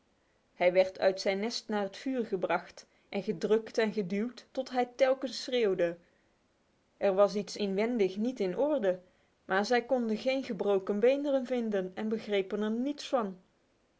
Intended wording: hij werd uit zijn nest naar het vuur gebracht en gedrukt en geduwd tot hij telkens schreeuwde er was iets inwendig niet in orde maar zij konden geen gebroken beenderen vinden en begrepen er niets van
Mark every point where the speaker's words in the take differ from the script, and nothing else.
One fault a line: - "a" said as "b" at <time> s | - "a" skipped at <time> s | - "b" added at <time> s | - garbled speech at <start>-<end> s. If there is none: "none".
none